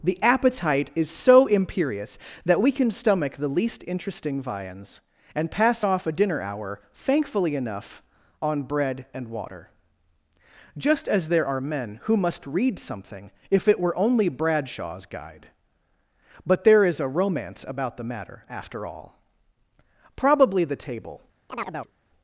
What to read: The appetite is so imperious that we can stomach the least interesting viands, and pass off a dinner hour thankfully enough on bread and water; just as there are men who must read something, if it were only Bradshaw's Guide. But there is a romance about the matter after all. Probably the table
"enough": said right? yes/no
yes